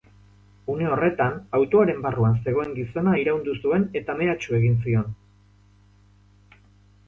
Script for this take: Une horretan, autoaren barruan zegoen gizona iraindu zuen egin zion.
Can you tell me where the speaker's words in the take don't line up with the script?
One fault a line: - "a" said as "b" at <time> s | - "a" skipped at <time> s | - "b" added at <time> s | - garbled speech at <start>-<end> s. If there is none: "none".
- "eta mehatxu" added at 4.0 s